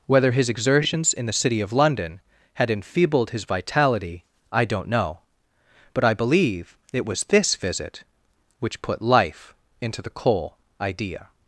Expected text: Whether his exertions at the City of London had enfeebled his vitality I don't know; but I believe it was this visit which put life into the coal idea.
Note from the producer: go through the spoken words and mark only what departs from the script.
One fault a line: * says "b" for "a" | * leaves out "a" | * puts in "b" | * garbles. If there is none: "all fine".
* says "in" for "at"